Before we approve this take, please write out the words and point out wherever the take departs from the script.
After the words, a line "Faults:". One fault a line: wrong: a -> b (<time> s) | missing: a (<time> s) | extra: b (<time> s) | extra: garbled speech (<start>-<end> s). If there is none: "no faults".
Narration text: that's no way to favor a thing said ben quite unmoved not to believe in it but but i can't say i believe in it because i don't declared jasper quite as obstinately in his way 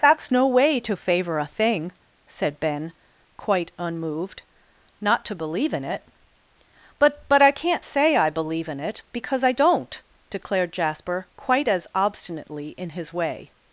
that's no way to favor a thing said ben quite unmoved not to believe in it but but i can't say i believe in it because i don't declared jasper quite as obstinately in his way
Faults:
no faults